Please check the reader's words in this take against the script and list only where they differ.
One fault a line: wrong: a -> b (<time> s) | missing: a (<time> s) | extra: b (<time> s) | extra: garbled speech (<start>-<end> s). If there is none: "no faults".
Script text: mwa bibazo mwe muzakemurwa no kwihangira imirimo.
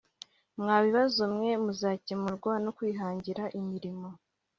no faults